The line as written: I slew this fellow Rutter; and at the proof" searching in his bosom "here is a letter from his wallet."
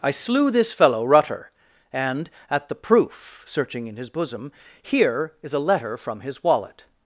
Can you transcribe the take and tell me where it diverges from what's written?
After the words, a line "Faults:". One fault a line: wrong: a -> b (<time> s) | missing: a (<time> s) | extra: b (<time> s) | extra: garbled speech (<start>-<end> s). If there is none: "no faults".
I slew this fellow Rutter; and at the proof" searching in his bosom "here is a letter from his wallet."
Faults:
no faults